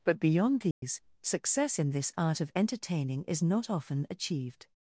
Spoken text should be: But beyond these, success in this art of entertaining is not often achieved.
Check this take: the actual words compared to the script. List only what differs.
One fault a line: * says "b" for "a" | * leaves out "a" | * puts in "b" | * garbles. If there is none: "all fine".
all fine